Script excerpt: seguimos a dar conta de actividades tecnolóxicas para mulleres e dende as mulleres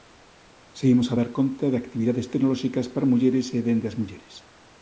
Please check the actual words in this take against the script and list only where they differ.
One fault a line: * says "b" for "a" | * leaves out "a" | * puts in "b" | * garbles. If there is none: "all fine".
all fine